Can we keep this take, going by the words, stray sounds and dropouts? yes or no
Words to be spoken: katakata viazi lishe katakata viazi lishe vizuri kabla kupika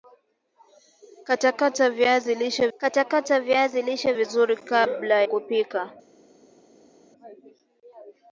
yes